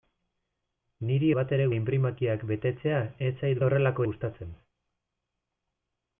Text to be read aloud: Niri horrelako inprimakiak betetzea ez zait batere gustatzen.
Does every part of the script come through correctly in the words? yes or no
no